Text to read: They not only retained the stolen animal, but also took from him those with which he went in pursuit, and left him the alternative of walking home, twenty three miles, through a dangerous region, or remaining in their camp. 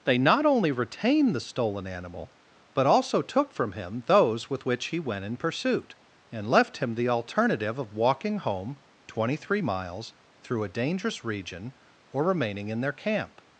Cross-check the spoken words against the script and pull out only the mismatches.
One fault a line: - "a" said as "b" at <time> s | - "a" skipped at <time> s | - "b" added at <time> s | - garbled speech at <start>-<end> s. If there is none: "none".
none